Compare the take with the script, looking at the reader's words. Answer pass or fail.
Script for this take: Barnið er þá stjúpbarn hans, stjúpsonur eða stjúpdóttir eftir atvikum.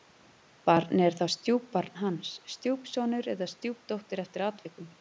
pass